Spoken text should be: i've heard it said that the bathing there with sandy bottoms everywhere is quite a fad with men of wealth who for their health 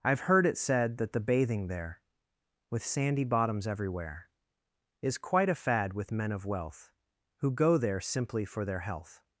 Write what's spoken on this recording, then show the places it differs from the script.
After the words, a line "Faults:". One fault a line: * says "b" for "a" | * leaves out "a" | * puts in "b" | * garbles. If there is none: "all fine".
i've heard it said that the bathing there with sandy bottoms everywhere is quite a fad with men of wealth who go there simply for their health
Faults:
* puts in "go there simply"